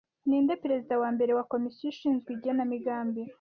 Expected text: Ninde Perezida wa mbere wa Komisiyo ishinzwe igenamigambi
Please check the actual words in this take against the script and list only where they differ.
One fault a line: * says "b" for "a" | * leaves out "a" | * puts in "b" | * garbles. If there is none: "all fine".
all fine